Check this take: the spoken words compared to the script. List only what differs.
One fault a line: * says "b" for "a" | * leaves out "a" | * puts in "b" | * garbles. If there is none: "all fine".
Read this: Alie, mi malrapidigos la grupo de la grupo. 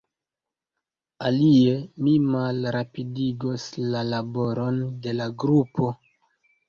* says "laboron" for "grupo"